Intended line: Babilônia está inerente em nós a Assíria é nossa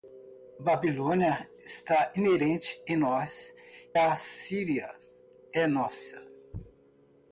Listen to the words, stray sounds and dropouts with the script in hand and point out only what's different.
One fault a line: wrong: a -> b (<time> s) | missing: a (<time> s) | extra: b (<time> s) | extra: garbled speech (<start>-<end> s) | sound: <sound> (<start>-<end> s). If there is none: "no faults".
no faults